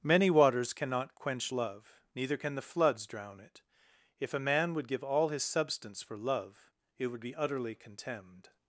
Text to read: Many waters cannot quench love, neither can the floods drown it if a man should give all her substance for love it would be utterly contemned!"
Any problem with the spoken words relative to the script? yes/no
yes